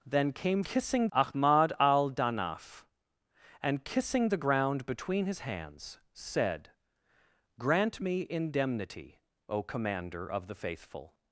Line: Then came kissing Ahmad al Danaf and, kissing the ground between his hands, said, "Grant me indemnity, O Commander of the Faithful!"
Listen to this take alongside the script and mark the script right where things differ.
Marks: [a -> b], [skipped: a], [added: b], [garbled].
Then came kissing Ahmad al Danaf and, kissing the ground between his hands, said, "Grant me indemnity, O Commander of the Faithful!"